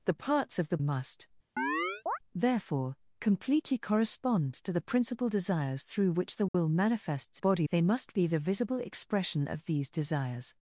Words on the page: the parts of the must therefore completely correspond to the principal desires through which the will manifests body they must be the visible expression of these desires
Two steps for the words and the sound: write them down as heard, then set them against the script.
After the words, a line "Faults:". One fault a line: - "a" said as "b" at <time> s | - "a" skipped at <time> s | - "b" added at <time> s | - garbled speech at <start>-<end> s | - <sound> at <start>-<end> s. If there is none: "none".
the parts of the must therefore completely correspond to the principal desires through which the will manifests body they must be the visible expression of these desires
Faults:
- chirp at 1.6-2.2 s
- dropout at 6.5-6.5 s